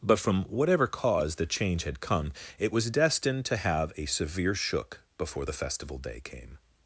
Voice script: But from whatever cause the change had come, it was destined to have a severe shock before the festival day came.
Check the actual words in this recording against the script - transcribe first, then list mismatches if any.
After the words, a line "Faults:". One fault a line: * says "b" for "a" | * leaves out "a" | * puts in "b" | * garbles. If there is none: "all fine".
But from whatever cause the change had come, it was destined to have a severe shook before the festival day came.
Faults:
* says "shook" for "shock"